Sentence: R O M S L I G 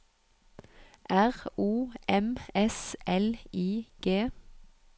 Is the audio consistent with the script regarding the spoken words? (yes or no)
yes